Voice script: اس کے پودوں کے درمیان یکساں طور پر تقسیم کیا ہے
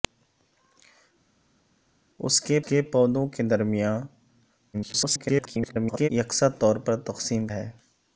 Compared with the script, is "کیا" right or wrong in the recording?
wrong